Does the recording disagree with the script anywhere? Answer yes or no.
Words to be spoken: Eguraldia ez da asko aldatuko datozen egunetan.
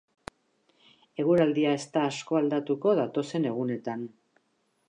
no